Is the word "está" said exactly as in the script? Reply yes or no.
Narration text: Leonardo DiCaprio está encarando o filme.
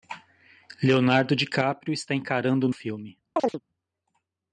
yes